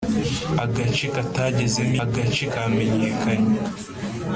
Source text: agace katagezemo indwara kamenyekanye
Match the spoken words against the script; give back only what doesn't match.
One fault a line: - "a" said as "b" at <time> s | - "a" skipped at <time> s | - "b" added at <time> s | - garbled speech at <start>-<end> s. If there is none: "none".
- "indwara" said as "agace" at 2.0 s